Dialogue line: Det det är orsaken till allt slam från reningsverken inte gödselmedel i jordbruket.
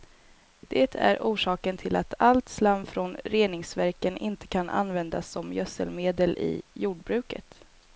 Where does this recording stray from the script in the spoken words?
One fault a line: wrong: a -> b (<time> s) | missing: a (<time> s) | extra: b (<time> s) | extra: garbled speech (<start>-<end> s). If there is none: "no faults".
missing: det (0.9 s)
extra: att (1.9 s)
extra: kan användas som (4.5 s)